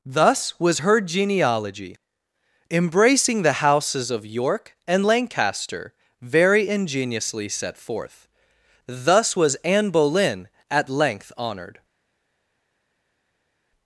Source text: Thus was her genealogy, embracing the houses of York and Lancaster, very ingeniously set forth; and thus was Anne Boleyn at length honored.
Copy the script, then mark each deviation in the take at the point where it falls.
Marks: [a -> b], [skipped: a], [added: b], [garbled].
Thus was her genealogy, embracing the houses of York and Lancaster, very ingeniously set forth; [skipped: and] thus was Anne Boleyn at length honored.